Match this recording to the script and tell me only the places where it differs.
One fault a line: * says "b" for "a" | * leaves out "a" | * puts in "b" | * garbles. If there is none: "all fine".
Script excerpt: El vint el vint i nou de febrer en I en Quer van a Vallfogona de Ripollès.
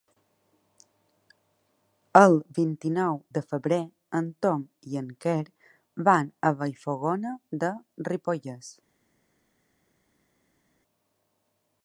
* leaves out "el vint"
* puts in "Tom"